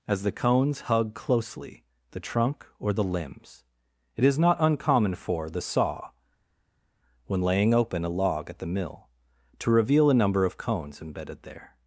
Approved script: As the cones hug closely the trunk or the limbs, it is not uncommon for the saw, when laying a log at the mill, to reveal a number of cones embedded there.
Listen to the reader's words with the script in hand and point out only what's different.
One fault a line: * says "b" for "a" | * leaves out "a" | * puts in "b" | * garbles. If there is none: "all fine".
* puts in "open"